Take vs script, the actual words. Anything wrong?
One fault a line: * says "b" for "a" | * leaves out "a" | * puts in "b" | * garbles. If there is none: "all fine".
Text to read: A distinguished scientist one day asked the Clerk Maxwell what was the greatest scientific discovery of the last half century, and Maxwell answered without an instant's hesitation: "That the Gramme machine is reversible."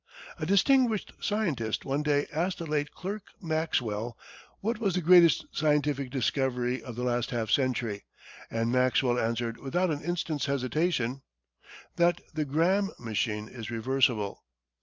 * puts in "late"